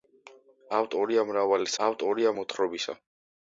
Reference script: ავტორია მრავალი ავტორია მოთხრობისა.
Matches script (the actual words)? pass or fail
pass